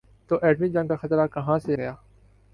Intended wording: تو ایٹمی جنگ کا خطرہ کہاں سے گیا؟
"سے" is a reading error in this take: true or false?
false